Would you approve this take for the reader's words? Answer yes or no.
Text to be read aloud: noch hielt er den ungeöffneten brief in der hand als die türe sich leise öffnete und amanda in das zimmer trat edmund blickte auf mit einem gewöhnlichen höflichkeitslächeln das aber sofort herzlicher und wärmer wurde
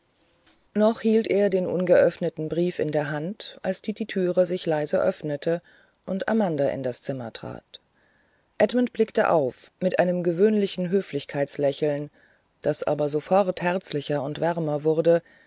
no